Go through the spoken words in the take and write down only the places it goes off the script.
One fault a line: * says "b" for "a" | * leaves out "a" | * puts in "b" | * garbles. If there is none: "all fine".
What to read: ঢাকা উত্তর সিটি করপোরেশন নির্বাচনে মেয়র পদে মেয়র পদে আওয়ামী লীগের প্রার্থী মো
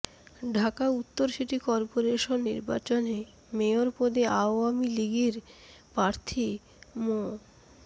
* leaves out "মেয়র পদে"